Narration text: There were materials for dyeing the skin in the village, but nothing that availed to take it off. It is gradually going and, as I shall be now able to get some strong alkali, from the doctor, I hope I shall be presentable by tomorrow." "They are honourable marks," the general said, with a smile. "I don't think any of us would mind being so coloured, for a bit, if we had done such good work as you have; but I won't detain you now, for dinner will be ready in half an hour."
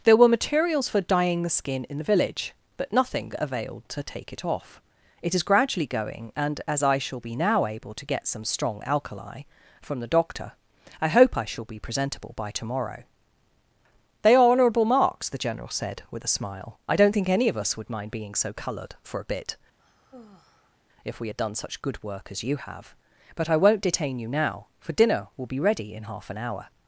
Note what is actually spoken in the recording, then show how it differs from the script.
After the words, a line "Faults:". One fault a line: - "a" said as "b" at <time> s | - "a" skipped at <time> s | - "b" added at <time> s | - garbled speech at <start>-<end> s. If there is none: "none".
There were materials for dyeing the skin in the village, but nothing availed to take it off. It is gradually going and, as I shall be now able to get some strong alkali, from the doctor, I hope I shall be presentable by tomorrow." "They are honourable marks," the general said, with a smile. "I don't think any of us would mind being so coloured, for a bit, if we had done such good work as you have; but I won't detain you now, for dinner will be ready in half an hour."
Faults:
- "that" skipped at 3.3 s